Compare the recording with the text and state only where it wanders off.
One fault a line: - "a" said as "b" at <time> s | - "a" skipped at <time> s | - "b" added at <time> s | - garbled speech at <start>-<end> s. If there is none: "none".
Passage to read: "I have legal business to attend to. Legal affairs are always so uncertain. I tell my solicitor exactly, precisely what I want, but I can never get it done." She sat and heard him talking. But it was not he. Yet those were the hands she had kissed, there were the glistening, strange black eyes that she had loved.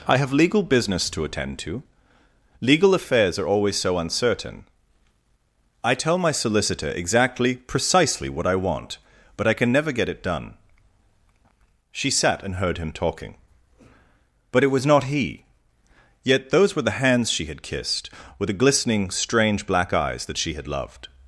- "there were" said as "with" at 18.4 s